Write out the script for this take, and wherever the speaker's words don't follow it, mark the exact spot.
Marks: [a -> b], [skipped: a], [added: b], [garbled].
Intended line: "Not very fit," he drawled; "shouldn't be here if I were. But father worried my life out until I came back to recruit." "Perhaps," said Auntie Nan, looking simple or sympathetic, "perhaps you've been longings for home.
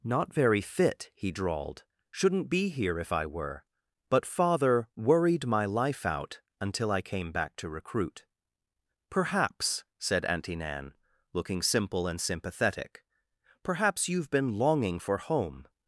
"Not very fit," he drawled; "shouldn't be here if I were. But father worried my life out until I came back to recruit." "Perhaps," said Auntie Nan, looking simple [or -> and] sympathetic, "perhaps you've been [longings -> longing] for home.